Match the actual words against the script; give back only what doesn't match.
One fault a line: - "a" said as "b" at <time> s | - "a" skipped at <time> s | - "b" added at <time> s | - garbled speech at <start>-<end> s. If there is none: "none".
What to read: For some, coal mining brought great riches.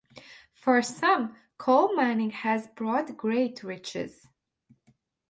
- "has" added at 2.3 s